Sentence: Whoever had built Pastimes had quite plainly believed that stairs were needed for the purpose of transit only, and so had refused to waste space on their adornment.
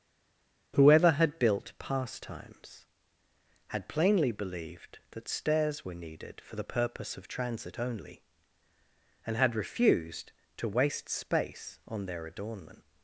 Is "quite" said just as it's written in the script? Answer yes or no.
no